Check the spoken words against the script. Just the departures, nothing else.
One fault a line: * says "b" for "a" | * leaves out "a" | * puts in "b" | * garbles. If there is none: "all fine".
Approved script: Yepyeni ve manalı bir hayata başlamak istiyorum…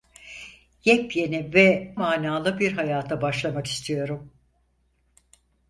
all fine